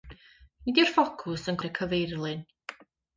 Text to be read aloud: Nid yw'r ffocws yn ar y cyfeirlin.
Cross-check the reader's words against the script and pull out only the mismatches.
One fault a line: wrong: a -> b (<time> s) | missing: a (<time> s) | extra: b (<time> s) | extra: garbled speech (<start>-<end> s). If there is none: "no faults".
no faults